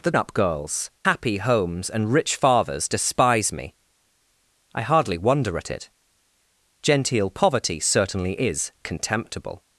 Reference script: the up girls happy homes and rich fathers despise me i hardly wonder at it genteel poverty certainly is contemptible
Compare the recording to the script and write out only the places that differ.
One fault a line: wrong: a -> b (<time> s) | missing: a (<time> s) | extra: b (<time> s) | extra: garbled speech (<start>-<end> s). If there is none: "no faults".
no faults